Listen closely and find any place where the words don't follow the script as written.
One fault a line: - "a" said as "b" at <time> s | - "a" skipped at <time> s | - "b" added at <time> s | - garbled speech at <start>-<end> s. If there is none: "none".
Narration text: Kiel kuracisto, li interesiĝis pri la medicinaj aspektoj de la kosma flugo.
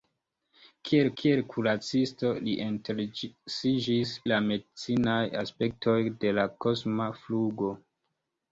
- "kiel" added at 1.2 s
- "pri" skipped at 4.1 s